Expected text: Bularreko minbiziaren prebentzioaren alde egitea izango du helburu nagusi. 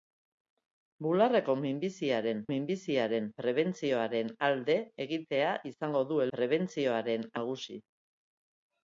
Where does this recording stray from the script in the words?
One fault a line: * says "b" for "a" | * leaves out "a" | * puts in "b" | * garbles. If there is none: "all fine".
* puts in "minbiziaren"
* says "prebentzioaren" for "helburu"